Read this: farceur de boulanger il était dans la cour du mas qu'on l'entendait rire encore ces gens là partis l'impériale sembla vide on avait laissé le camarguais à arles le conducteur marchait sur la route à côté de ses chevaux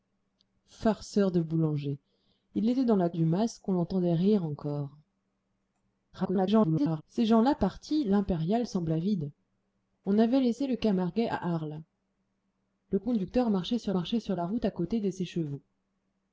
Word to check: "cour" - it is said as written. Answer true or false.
false